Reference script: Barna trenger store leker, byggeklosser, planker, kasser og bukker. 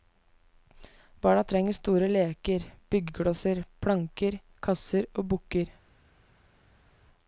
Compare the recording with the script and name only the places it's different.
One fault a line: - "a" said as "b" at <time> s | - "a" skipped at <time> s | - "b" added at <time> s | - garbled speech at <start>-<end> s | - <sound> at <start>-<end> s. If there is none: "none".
none